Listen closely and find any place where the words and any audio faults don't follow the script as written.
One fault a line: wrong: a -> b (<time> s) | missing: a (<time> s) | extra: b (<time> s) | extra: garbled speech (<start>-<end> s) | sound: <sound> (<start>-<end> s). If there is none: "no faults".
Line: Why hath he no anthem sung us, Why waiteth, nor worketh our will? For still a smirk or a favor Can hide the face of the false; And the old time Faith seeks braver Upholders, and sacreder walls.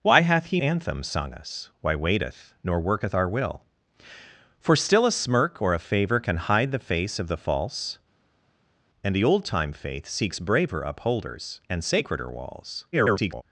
missing: no (0.6 s)
extra: garbled speech (12.9-13.4 s)